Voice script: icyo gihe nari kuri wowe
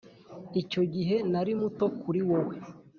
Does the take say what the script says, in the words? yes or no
no